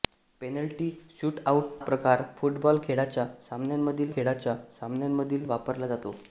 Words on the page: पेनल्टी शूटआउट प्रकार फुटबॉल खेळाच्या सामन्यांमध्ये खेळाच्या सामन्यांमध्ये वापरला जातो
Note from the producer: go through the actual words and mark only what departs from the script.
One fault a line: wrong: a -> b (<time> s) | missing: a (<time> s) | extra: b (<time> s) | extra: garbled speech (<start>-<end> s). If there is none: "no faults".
no faults